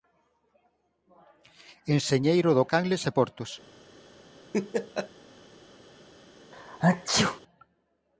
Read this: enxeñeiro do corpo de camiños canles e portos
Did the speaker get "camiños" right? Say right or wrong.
wrong